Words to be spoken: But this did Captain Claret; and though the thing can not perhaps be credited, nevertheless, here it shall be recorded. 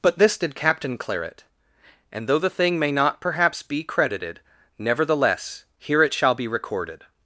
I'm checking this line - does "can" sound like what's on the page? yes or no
no